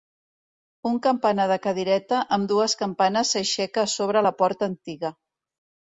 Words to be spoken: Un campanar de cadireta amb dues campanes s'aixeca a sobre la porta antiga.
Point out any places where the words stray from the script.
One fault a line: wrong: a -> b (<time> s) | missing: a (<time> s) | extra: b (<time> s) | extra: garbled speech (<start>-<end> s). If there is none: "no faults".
no faults